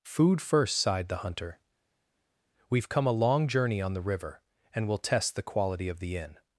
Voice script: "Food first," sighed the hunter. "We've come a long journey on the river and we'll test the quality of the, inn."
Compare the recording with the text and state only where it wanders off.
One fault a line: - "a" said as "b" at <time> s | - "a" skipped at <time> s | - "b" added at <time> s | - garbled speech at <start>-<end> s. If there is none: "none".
none